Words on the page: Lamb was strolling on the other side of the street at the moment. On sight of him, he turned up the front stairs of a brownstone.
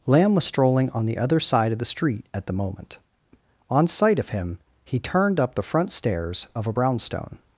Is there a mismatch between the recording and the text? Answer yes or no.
no